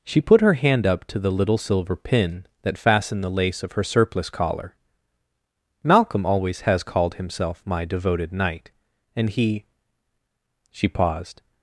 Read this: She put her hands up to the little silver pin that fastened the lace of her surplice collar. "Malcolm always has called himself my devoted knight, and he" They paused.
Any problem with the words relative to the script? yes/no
yes